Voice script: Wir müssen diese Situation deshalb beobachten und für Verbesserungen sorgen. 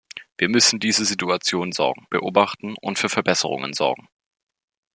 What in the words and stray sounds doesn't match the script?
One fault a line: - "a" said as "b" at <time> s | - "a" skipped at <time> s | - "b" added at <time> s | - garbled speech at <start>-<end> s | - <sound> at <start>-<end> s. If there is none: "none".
- "deshalb" said as "sorgen" at 1.7 s